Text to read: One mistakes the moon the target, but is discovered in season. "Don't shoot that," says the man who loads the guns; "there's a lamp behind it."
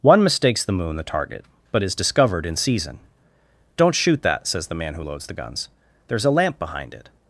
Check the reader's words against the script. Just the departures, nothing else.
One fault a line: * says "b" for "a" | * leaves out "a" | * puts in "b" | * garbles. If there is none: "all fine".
all fine